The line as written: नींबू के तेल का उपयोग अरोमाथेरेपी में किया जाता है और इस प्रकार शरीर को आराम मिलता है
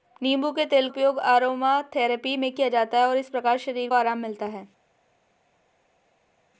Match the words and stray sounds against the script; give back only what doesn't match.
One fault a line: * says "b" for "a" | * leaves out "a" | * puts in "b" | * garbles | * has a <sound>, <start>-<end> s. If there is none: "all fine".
* leaves out "का"
* leaves out "को"